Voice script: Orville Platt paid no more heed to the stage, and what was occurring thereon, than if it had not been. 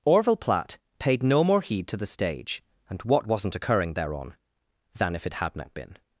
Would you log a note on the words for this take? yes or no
yes